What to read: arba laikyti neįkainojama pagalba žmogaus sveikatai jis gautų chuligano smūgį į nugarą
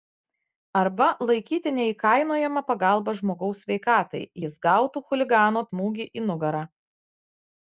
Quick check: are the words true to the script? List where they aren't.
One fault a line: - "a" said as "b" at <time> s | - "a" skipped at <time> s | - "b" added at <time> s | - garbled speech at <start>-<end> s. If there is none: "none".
none